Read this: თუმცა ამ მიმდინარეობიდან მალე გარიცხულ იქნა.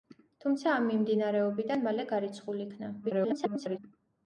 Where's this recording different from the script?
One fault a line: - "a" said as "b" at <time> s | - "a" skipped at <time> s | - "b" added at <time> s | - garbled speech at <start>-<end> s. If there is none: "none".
- garbled speech at 3.0-3.8 s